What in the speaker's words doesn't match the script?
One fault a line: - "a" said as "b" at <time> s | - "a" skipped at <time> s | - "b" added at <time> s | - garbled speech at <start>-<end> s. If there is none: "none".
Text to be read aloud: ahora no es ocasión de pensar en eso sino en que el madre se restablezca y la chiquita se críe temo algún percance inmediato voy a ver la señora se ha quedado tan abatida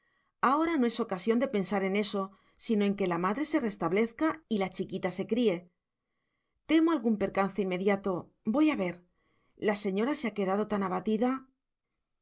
- "el" said as "la" at 3.0 s